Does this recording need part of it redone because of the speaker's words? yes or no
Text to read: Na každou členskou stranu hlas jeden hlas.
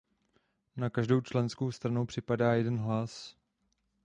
yes